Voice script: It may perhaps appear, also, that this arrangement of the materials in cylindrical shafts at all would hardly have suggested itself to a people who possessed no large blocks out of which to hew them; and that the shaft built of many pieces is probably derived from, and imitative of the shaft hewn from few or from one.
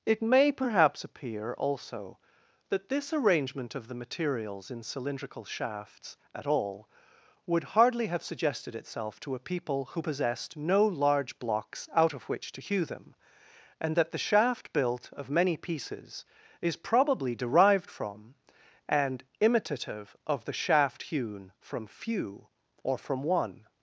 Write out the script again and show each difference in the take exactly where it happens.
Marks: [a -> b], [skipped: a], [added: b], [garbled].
It may perhaps appear, also, that this arrangement of the materials in cylindrical shafts at all would hardly have suggested itself to a people who possessed no large blocks out of which to hew them; and that the shaft built of many pieces is probably derived from, and imitative of the shaft hewn from few or from one.